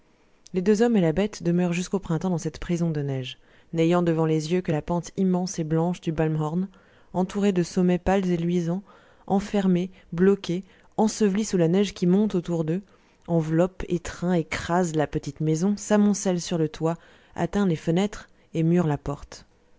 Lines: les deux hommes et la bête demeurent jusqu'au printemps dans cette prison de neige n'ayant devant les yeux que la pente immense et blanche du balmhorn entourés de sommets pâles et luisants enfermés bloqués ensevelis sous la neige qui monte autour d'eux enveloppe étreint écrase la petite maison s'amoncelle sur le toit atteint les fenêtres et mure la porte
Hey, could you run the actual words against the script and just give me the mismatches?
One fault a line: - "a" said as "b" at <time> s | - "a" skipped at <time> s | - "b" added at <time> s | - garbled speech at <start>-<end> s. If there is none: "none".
none